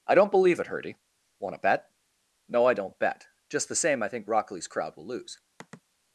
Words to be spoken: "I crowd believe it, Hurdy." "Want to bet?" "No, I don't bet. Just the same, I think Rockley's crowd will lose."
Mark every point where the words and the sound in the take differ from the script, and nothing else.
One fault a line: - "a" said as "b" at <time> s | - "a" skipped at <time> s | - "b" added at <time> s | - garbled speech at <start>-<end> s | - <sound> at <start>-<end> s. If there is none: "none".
- "crowd" said as "don't" at 0.1 s
- sigh at 5.6-5.8 s